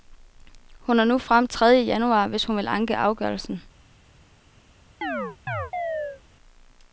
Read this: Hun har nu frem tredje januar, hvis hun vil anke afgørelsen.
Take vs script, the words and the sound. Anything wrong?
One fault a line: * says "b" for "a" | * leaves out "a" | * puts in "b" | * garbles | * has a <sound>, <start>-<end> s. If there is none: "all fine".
* has a chirp, 5.0-6.2 s